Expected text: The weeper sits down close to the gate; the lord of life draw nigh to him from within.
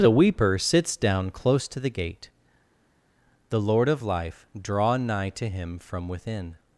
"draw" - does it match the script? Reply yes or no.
yes